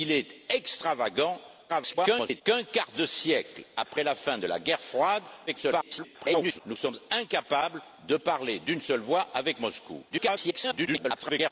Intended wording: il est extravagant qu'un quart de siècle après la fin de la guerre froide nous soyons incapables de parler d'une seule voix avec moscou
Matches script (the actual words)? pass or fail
fail